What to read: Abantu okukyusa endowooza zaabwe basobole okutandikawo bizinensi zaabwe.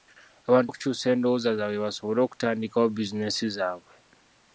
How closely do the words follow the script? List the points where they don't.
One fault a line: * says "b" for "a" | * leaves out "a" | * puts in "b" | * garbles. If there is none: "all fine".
all fine